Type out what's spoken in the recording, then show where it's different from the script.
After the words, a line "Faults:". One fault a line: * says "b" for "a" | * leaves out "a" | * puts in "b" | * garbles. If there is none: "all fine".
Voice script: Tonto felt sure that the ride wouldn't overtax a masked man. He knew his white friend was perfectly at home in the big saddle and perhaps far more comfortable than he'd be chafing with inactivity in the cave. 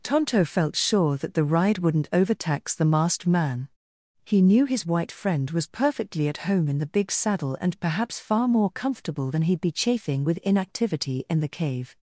Tonto felt sure that the ride wouldn't overtax the masked man. He knew his white friend was perfectly at home in the big saddle and perhaps far more comfortable than he'd be chafing with inactivity in the cave.
Faults:
* says "the" for "a"